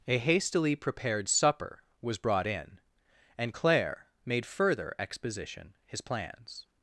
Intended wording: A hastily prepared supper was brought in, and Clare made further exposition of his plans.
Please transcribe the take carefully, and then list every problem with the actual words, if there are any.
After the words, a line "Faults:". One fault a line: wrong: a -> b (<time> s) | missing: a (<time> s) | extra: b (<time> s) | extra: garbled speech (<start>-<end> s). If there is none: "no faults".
A hastily prepared supper was brought in, and Clare made further exposition his plans.
Faults:
missing: of (5.7 s)